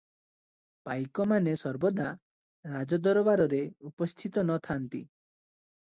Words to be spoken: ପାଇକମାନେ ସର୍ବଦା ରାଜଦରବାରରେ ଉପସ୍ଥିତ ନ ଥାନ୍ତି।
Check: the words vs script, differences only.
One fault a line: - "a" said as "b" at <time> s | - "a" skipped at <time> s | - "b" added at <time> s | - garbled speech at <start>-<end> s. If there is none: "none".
none